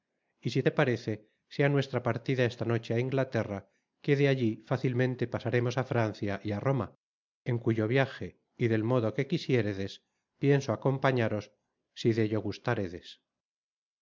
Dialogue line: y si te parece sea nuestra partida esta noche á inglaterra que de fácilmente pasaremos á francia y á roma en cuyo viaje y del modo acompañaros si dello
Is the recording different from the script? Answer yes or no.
yes